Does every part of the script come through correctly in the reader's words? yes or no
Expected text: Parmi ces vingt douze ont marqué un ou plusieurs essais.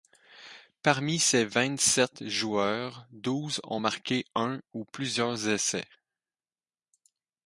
no